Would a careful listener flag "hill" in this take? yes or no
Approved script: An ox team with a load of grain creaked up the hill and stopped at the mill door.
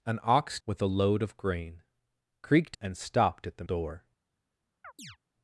yes